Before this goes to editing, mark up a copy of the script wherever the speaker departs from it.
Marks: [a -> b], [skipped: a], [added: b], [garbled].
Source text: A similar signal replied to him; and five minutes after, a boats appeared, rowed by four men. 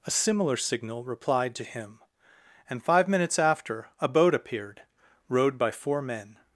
A similar signal replied to him; and five minutes after, a [boats -> boat] appeared, rowed by four men.